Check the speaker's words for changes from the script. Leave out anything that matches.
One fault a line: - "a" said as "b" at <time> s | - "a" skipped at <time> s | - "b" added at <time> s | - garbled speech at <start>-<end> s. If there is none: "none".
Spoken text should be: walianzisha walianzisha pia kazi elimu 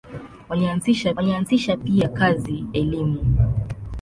none